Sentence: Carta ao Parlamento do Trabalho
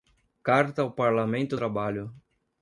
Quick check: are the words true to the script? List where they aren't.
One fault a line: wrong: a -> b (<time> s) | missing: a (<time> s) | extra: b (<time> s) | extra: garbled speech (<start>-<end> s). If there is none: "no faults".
missing: do (1.6 s)